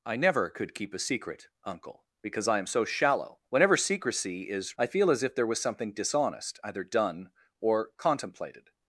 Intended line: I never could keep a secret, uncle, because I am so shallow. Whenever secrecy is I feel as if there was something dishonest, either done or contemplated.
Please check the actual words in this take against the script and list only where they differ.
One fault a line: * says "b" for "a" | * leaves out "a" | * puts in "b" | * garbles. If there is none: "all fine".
all fine